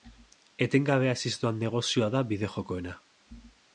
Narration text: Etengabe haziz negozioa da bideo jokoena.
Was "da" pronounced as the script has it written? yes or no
yes